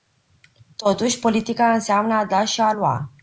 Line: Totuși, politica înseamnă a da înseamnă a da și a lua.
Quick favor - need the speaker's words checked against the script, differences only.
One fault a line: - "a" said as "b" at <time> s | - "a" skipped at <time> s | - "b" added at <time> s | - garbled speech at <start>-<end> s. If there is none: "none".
- "înseamnă a da" skipped at 2.5 s